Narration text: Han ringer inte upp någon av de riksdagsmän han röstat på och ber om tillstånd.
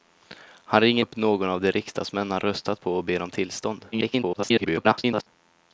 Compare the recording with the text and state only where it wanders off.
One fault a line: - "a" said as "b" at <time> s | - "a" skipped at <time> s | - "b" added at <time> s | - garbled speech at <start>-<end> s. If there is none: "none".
- "inte" skipped at 1.0 s
- garbled speech at 3.9-5.3 s